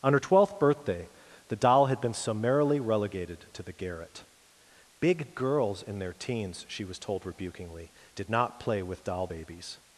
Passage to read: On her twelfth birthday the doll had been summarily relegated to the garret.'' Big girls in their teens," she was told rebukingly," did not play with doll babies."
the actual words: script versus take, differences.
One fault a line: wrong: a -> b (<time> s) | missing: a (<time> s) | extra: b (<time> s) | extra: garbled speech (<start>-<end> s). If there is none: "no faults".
no faults